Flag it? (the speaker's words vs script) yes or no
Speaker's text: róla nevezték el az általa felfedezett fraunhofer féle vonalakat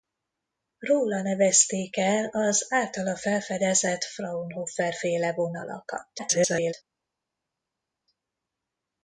yes